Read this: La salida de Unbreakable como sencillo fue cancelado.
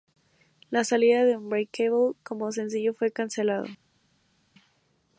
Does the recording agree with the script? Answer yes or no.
yes